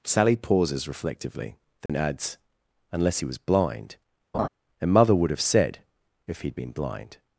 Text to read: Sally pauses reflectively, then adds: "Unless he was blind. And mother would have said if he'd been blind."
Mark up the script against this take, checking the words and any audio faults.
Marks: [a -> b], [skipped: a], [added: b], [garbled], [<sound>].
Sally pauses reflectively, then [dropout] adds: "Unless he was blind. [laugh] And mother would have said if he'd been blind."